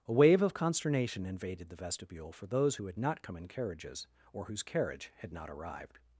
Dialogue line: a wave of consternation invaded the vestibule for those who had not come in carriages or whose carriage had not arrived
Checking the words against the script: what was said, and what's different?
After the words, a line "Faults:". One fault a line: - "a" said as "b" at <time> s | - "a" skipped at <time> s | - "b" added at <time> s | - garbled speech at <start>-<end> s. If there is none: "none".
a wave of consternation invaded the vestibule for those who had not come in carriages or whose carriage had not arrived
Faults:
none